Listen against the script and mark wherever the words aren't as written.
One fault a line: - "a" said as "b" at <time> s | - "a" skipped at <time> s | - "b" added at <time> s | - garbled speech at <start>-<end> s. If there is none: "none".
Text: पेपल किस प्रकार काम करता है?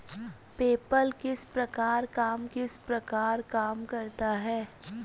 - "किस प्रकार काम" added at 2.5 s